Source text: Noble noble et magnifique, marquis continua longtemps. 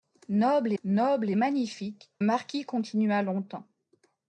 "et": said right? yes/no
yes